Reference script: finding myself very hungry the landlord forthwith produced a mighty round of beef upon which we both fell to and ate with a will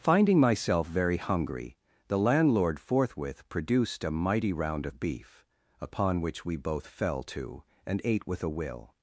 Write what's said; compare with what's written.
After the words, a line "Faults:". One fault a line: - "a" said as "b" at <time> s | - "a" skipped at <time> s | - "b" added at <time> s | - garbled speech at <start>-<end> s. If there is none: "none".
finding myself very hungry the landlord forthwith produced a mighty round of beef upon which we both fell to and ate with a will
Faults:
none